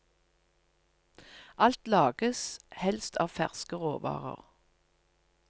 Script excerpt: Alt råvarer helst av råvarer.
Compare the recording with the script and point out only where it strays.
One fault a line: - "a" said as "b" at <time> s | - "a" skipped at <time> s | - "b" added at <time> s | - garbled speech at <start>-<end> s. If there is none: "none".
- "råvarer" said as "lages" at 1.9 s
- "ferske" added at 3.3 s